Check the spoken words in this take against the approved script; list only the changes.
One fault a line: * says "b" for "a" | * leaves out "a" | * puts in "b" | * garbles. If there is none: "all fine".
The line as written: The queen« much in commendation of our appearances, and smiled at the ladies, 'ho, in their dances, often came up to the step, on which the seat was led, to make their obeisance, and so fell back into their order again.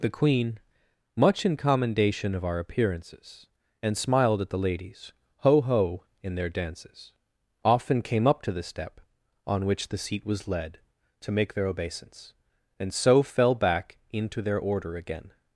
* puts in "ho"